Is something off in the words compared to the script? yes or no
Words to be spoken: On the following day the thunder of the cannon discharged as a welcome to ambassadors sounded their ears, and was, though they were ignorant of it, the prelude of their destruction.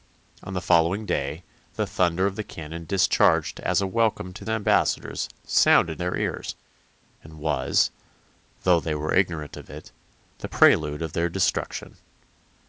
no